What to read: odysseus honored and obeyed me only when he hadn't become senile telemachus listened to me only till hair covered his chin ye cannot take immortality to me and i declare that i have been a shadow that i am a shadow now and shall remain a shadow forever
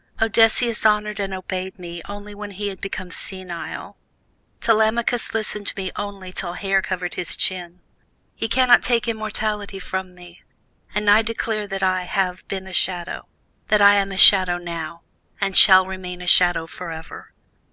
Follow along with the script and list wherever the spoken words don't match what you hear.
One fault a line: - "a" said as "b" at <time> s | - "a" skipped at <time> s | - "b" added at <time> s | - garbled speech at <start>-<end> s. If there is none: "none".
- "hadn't" said as "had" at 2.7 s
- "to" said as "from" at 9.8 s